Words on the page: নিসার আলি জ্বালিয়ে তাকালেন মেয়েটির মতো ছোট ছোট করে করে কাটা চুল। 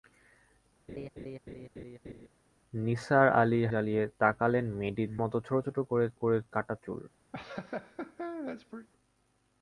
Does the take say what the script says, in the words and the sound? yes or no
no